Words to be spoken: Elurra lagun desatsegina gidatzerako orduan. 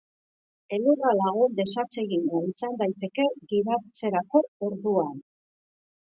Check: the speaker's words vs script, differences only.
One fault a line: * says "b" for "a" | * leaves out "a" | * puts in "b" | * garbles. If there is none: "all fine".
* puts in "izan daiteke"